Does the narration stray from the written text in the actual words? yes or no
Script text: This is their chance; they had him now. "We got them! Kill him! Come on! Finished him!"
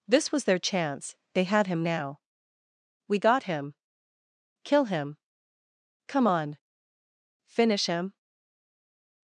yes